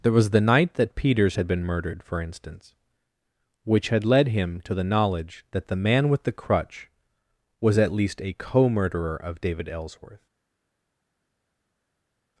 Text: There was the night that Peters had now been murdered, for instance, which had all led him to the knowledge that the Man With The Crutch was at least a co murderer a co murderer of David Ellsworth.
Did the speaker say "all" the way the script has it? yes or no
no